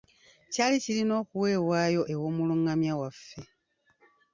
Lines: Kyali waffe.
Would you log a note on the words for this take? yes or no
yes